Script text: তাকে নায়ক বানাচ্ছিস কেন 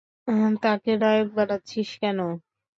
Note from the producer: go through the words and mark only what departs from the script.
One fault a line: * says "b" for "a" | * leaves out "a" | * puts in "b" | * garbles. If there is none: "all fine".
all fine